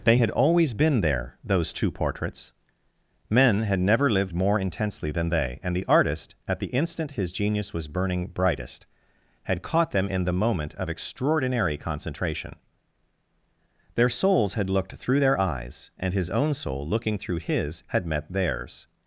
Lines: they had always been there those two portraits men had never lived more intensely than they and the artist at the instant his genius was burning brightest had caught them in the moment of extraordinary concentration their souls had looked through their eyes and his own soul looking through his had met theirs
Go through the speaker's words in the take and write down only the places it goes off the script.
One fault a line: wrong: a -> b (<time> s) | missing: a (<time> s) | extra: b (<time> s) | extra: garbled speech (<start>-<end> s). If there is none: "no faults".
no faults